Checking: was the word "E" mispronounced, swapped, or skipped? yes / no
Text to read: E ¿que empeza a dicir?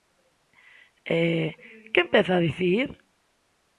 no